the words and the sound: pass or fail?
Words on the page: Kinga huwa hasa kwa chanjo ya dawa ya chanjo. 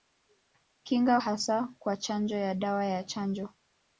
fail